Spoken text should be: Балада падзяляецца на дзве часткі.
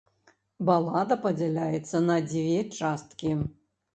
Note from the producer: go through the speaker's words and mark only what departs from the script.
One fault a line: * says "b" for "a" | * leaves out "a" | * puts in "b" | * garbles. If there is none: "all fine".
all fine